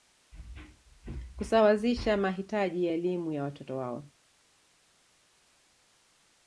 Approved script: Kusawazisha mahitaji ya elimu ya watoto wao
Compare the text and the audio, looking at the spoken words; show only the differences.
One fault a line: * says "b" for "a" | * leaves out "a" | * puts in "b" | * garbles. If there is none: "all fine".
all fine